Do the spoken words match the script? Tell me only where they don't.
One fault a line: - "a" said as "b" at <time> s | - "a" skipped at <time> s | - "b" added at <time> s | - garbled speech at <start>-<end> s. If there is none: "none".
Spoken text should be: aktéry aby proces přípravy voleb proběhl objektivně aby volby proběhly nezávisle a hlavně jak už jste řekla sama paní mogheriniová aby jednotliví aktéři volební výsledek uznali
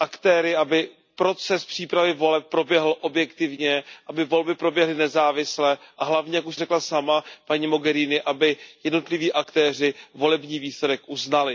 - "jste" skipped at 6.5 s